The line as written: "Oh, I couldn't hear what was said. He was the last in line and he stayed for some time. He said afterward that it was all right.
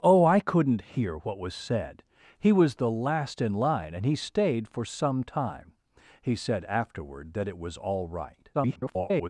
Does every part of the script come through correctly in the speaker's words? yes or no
no